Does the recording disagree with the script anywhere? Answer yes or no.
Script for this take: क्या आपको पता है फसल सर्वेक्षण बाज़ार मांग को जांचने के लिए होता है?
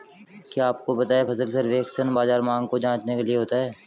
no